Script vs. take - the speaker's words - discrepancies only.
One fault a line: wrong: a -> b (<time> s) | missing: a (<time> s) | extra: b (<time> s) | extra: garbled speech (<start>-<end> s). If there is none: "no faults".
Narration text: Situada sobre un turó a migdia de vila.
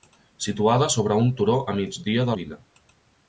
no faults